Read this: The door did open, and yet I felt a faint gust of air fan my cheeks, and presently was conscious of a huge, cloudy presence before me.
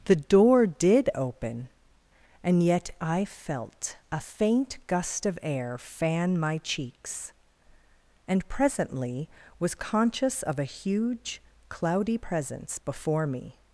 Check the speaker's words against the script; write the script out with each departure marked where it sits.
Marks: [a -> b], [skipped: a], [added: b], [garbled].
The door did open, and yet I felt a faint gust of air fan my cheeks, and presently was conscious of a huge, cloudy presence before me.